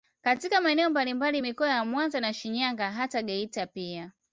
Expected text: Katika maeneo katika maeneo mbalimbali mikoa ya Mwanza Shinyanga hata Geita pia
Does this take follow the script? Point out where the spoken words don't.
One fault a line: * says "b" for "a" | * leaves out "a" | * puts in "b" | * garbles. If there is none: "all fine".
* leaves out "katika maeneo"
* puts in "na"